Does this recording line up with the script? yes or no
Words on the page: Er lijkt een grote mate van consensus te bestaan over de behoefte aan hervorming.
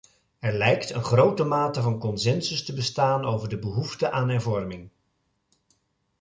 yes